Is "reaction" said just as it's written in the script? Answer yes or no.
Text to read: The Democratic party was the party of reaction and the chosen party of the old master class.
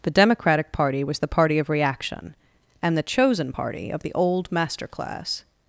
yes